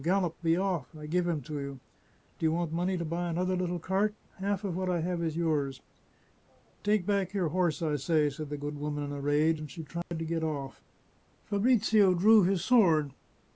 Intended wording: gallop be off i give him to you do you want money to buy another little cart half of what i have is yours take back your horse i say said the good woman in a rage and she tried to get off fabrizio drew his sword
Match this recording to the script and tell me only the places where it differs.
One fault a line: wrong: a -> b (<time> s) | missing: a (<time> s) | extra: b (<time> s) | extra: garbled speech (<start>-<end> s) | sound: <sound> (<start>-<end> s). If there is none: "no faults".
sound: dropout (10.0-10.1 s)